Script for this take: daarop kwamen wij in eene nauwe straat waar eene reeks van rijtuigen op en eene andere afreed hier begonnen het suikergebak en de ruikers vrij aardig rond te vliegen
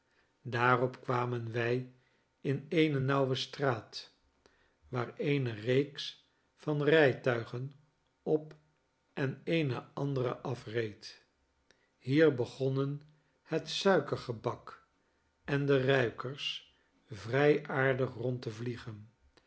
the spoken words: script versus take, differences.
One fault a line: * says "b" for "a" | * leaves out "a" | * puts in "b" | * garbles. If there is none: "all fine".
all fine